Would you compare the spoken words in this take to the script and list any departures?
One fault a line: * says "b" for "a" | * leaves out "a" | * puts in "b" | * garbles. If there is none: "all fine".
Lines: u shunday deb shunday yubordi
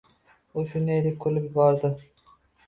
* says "kulib" for "shunday"